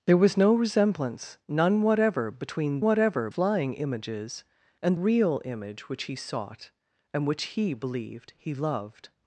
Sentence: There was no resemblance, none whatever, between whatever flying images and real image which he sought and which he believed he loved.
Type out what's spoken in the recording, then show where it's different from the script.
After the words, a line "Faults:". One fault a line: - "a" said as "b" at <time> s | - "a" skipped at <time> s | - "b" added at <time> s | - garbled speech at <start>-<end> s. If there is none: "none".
There was no resemblance, none whatever, between whatever flying images and real image which he sought and which he believed he loved.
Faults:
none